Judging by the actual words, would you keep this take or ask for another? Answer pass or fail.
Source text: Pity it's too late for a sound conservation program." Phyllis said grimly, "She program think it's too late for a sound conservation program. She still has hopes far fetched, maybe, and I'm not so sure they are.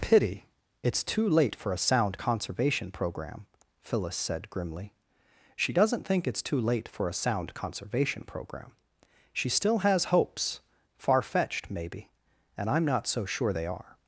fail